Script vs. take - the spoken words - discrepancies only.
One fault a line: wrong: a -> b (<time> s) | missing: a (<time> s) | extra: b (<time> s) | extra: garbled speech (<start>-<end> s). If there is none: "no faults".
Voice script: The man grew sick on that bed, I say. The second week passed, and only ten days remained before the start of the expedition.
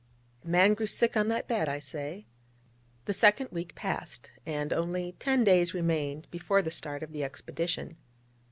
no faults